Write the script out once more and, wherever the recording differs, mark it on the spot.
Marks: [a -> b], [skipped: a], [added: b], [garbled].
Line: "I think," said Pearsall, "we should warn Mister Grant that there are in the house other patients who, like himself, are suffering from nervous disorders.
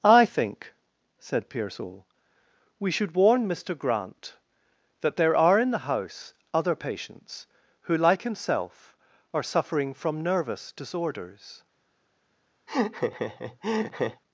"I think," said Pearsall, "we should warn Mister Grant that there are in the house other patients who, like himself, are suffering from nervous disorders.